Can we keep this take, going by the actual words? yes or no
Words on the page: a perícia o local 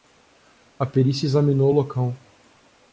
no